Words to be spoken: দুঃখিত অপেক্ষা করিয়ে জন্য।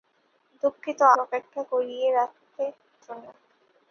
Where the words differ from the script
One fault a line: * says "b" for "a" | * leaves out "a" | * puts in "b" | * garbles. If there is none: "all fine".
all fine